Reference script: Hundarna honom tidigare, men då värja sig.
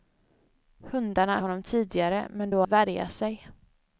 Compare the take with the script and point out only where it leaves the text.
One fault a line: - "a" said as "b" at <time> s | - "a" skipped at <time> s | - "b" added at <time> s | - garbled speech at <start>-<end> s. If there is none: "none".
none